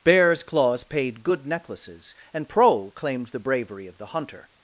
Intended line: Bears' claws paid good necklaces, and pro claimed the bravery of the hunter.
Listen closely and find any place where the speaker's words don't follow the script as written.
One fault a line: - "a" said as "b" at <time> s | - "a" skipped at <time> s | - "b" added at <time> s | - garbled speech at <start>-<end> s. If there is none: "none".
none